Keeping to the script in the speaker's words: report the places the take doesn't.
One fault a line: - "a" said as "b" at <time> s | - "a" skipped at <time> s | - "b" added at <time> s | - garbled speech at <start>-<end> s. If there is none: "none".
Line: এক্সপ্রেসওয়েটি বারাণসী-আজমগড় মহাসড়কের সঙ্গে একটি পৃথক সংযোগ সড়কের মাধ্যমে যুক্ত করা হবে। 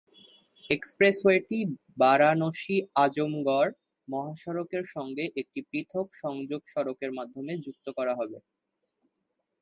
none